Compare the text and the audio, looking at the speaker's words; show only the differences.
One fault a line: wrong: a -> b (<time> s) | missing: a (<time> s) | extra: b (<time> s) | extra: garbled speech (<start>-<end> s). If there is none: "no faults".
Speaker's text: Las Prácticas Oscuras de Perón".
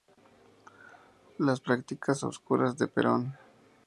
no faults